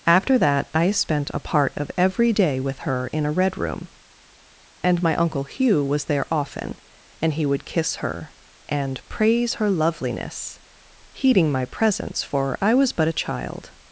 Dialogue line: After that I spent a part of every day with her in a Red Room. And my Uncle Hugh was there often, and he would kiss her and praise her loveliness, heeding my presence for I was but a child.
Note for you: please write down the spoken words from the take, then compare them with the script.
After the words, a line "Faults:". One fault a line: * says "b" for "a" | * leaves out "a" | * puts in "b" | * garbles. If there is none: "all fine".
After that I spent a part of every day with her in a Red Room. And my Uncle Hugh was there often, and he would kiss her and praise her loveliness, heeding my presence for I was but a child.
Faults:
all fine